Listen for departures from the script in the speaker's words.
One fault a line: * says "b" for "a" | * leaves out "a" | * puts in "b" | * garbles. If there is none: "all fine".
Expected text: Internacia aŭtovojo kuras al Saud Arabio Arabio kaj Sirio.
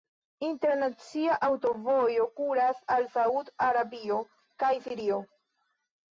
* leaves out "Arabio"